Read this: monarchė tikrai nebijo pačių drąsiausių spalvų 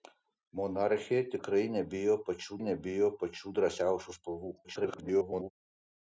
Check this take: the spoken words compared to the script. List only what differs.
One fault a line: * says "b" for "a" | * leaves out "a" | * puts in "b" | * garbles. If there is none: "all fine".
* puts in "nebijo pačių"
* garbles